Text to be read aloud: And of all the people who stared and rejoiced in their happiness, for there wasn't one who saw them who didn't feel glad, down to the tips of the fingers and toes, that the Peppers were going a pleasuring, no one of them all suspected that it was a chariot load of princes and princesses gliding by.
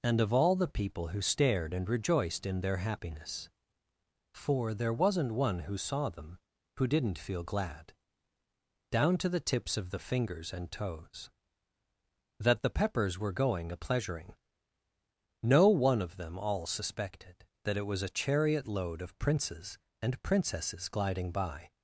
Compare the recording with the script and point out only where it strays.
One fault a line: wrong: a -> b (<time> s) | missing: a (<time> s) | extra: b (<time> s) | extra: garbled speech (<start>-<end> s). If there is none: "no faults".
no faults